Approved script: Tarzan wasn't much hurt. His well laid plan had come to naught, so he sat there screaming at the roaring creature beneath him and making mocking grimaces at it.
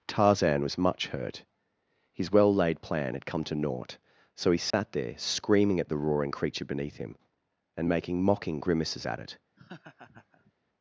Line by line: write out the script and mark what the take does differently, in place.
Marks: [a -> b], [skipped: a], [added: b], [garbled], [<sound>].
Tarzan [wasn't -> was] much hurt. His well laid plan had come to naught, so he sat [dropout] there screaming at the roaring creature beneath him and making mocking grimaces at it. [laugh]